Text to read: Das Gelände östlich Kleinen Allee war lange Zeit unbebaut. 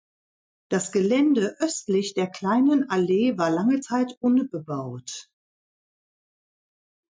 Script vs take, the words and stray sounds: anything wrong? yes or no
yes